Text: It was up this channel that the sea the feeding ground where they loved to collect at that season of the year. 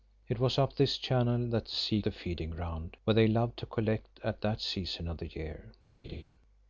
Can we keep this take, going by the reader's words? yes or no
yes